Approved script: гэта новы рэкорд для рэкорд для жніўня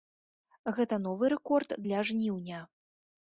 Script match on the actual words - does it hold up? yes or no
no